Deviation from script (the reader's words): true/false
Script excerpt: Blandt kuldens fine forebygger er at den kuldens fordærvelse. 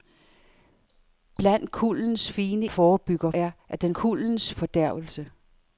false